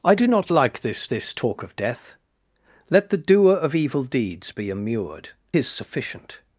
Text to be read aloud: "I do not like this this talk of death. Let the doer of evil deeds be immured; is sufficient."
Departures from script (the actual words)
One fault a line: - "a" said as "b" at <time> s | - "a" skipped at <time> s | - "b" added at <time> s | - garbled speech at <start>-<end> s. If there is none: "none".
none